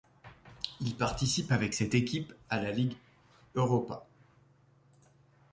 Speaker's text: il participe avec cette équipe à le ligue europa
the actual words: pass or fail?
fail